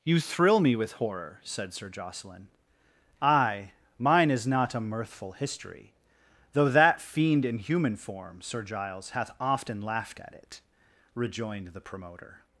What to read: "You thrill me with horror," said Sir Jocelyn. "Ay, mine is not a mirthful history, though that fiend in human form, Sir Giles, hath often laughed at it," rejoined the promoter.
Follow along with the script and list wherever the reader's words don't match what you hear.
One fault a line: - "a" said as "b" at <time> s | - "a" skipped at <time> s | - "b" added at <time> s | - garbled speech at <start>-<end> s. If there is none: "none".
none